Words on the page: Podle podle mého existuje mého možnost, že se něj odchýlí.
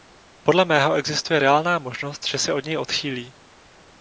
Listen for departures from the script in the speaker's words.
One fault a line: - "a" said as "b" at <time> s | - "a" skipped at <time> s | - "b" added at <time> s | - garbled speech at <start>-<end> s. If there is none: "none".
- "podle" skipped at 0.7 s
- "mého" said as "reálná" at 1.4 s
- "od" added at 2.5 s